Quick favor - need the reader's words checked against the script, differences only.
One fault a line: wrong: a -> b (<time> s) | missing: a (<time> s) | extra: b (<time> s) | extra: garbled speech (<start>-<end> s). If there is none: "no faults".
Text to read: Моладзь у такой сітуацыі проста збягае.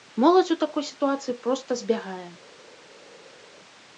no faults